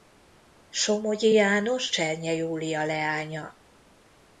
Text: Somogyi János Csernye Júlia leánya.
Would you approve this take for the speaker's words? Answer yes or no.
yes